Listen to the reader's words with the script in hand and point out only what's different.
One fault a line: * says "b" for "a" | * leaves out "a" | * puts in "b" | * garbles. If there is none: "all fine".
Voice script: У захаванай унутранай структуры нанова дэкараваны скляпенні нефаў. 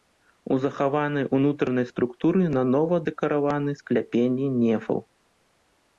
all fine